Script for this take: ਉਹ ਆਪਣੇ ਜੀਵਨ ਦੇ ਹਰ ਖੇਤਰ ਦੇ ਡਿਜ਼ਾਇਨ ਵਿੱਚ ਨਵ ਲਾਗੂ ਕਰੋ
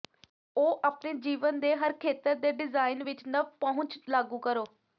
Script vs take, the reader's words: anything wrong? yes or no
yes